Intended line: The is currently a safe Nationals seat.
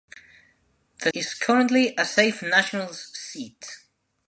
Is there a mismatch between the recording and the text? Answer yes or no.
no